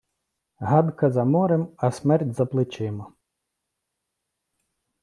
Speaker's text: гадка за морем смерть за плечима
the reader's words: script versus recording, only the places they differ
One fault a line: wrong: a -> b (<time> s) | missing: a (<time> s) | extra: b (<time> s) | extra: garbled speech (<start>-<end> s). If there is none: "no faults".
extra: а (1.8 s)